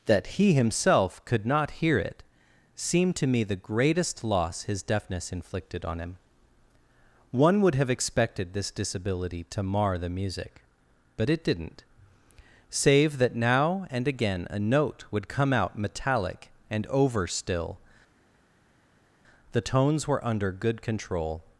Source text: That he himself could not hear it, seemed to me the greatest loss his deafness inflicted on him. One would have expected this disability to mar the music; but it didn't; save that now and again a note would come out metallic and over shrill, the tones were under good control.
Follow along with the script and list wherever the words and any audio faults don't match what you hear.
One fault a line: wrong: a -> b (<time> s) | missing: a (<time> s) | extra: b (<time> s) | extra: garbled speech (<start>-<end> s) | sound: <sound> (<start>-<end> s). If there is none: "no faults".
wrong: shrill -> still (17.3 s)